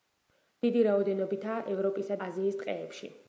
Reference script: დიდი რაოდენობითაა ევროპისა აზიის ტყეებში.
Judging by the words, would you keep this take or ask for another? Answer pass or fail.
pass